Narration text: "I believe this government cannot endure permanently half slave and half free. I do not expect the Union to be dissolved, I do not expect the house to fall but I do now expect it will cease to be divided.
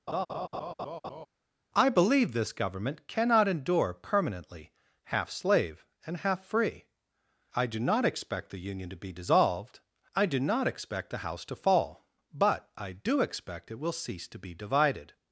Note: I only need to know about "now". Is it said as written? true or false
false